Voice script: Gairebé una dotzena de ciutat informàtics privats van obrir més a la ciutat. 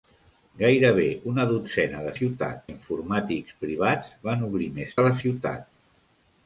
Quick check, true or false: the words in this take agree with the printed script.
true